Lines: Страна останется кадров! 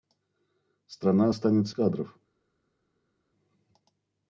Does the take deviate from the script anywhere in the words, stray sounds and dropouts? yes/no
no